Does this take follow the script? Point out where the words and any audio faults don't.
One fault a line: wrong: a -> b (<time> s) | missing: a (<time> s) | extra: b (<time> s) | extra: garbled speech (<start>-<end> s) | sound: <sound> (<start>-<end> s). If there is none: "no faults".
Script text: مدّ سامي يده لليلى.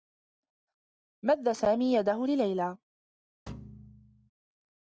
sound: thud (3.5-4.3 s)